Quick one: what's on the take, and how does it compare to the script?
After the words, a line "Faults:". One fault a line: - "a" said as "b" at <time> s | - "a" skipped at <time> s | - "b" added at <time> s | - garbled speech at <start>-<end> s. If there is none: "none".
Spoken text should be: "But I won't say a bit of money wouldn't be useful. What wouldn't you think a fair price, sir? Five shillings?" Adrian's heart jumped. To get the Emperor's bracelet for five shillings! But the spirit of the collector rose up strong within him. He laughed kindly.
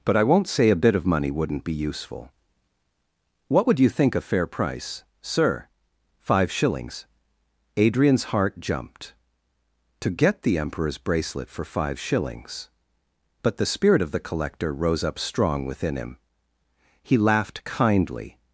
"But I won't say a bit of money wouldn't be useful. What would you think a fair price, sir? Five shillings?" Adrian's heart jumped. To get the Emperor's bracelet for five shillings! But the spirit of the collector rose up strong within him. He laughed kindly.
Faults:
- "wouldn't" said as "would" at 3.7 s